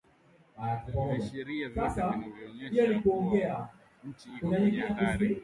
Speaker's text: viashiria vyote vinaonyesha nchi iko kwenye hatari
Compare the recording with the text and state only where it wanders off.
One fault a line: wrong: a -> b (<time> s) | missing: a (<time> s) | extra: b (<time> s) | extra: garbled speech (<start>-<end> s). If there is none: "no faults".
extra: kuwa (3.0 s)